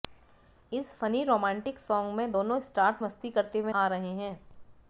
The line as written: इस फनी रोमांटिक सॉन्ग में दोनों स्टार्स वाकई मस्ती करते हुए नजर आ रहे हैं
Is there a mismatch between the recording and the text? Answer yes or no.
yes